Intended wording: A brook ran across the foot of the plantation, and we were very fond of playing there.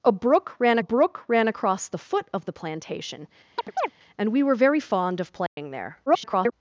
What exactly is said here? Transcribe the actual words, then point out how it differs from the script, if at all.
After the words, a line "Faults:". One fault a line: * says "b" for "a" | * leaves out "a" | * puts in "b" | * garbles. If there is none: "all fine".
A brook ran brook ran across the foot of the plantation, and we were very fond of playing there. [garbled]
Faults:
* puts in "brook ran"
* garbles